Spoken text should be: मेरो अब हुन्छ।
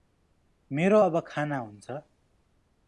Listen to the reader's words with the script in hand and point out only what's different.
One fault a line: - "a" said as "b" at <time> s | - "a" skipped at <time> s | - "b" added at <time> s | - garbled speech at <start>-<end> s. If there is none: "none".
- "खाना" added at 1.3 s